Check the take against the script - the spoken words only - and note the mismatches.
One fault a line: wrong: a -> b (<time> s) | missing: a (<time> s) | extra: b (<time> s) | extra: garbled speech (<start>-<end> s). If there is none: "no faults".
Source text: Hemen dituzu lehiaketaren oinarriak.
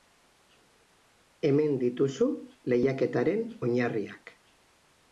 no faults